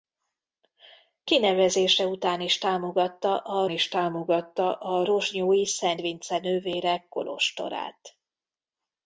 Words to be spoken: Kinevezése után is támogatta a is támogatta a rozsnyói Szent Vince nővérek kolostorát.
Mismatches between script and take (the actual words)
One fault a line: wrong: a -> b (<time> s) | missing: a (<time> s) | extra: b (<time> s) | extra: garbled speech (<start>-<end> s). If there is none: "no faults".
no faults